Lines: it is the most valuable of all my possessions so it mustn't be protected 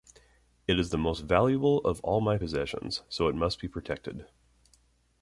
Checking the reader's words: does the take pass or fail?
fail